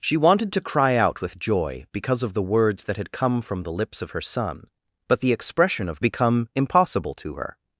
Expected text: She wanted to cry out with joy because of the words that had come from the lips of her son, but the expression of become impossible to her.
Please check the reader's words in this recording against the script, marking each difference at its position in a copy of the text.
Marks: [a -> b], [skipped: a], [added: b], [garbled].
She wanted to cry out with joy because of the words that had come from the lips of her son, but the expression of become impossible to her.